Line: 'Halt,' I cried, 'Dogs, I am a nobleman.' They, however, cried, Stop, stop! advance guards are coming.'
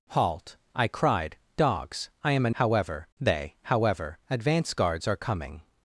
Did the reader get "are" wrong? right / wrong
right